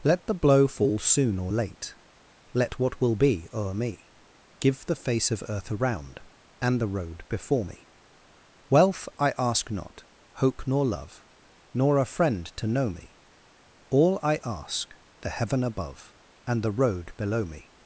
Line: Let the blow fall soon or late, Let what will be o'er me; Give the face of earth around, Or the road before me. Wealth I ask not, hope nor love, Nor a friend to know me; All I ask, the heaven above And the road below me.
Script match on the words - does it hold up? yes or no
no